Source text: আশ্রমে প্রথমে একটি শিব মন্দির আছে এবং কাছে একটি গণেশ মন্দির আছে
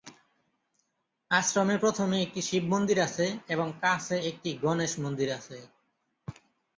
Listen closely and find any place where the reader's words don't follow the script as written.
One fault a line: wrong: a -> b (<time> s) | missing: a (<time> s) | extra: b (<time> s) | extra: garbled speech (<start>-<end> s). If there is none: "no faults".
no faults